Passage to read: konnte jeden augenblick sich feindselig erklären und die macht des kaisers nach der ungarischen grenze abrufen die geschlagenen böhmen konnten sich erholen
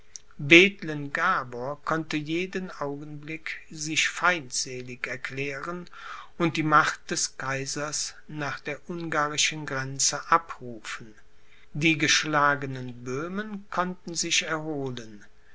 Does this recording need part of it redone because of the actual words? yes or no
no